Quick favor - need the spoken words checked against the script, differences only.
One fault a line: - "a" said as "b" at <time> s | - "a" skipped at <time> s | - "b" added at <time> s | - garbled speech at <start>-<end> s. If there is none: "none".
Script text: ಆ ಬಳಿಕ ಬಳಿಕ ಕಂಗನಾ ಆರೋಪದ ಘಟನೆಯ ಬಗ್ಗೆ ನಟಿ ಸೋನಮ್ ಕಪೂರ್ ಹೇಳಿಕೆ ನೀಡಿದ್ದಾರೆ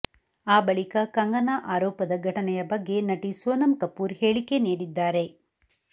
- "ಬಳಿಕ" skipped at 1.0 s